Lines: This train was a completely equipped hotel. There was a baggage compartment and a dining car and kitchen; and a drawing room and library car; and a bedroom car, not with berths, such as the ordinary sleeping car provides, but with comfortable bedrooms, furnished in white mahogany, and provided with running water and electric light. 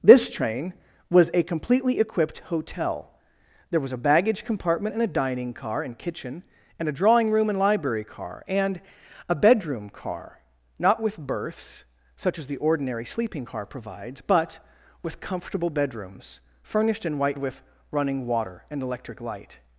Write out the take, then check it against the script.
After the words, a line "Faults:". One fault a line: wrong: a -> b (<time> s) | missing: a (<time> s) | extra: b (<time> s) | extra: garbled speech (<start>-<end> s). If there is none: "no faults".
This train was a completely equipped hotel. There was a baggage compartment and a dining car and kitchen; and a drawing room and library car; and a bedroom car, not with berths, such as the ordinary sleeping car provides, but with comfortable bedrooms, furnished in white with running water and electric light.
Faults:
missing: mahogany and provided (17.4 s)